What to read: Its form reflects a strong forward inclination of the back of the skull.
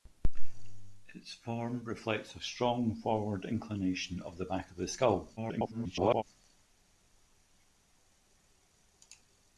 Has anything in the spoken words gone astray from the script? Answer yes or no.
yes